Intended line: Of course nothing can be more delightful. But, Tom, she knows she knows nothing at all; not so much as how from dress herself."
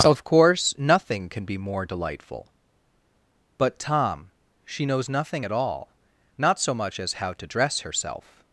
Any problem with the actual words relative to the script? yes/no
yes